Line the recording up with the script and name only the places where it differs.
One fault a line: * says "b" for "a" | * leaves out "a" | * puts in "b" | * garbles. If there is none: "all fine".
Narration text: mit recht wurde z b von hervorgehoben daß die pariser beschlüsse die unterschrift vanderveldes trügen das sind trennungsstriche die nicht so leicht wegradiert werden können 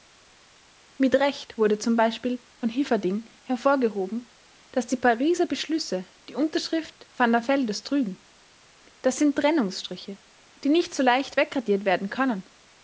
* puts in "hilferding"